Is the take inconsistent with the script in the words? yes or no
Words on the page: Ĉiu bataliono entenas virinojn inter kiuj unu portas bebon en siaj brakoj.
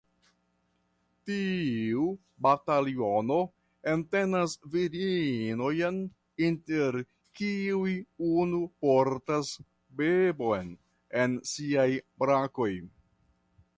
yes